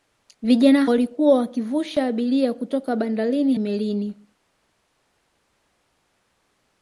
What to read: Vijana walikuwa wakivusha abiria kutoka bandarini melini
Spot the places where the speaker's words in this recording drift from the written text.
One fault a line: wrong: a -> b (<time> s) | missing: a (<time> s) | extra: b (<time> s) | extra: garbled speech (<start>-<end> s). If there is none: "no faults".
no faults